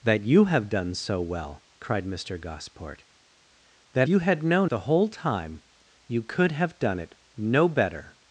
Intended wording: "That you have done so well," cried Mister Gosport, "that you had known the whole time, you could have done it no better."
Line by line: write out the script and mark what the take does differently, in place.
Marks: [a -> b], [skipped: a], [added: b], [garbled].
"That you have done so well," cried Mister Gosport, "that you had known the whole time, you could have done it no better."